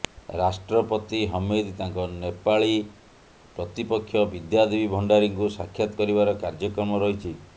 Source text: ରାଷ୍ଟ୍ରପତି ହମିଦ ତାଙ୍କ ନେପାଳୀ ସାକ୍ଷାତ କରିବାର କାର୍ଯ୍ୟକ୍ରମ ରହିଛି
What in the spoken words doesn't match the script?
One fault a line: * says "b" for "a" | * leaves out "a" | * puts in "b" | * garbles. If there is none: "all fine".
* puts in "ପ୍ରତିପକ୍ଷ ବିଦ୍ୟାଦେବୀ ଭଣ୍ଡାରୀଙ୍କୁ"